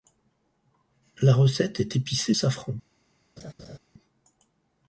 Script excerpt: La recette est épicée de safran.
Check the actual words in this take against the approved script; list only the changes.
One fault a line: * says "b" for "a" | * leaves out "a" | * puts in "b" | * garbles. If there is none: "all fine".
* leaves out "de"